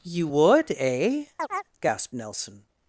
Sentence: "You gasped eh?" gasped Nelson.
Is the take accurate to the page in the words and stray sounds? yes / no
no